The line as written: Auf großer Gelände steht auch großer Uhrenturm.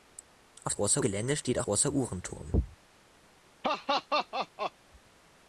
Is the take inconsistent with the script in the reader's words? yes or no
no